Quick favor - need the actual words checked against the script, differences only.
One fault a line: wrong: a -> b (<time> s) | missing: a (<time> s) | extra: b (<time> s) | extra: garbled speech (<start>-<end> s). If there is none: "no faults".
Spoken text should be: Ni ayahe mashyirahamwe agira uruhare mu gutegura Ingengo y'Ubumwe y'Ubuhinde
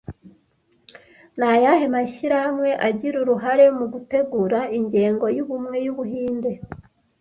no faults